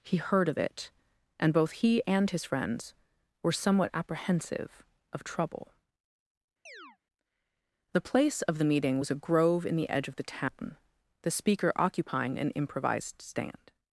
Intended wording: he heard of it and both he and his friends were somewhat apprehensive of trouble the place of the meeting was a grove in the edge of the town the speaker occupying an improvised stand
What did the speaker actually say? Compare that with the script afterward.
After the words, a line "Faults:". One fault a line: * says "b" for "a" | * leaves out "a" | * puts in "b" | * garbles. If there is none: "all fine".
he heard of it and both he and his friends were somewhat apprehensive of trouble the place of the meeting was a grove in the edge of the town the speaker occupying an improvised stand
Faults:
all fine